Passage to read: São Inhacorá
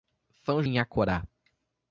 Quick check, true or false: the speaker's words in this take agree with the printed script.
true